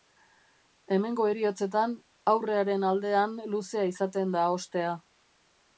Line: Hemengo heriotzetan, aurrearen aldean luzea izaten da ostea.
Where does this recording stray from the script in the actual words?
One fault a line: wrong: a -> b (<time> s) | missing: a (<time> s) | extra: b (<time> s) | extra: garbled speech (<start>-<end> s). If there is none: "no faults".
no faults